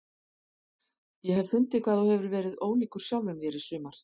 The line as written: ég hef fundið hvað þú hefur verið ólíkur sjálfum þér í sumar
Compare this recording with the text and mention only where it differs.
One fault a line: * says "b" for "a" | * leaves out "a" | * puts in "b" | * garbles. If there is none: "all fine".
all fine